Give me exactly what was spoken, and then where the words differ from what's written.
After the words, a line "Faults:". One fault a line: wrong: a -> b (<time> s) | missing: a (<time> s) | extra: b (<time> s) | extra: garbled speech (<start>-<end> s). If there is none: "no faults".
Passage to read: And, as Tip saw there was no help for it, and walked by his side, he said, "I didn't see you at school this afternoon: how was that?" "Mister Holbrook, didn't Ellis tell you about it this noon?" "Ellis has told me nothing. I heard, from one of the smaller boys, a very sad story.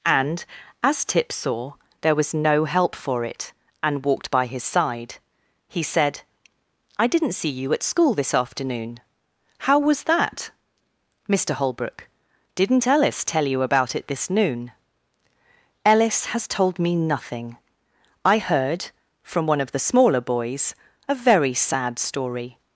And, as Tip saw there was no help for it, and walked by his side, he said, "I didn't see you at school this afternoon: how was that?" "Mister Holbrook, didn't Ellis tell you about it this noon?" "Ellis has told me nothing. I heard, from one of the smaller boys, a very sad story.
Faults:
no faults